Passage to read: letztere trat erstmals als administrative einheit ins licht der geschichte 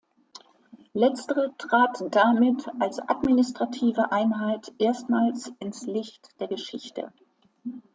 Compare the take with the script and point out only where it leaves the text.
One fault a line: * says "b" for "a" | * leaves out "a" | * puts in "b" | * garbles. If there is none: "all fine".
* says "damit" for "erstmals"
* puts in "erstmals"